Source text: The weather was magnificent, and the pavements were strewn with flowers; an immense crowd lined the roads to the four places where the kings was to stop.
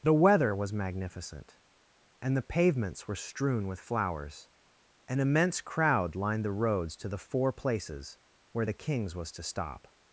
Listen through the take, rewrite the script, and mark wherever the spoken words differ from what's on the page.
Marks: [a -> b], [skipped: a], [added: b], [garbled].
The weather was magnificent, and the pavements were strewn with flowers; an immense crowd lined the roads to the four places where the kings was to stop.